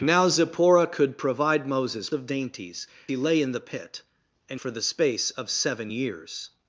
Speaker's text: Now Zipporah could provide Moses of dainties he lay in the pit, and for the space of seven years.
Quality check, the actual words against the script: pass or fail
pass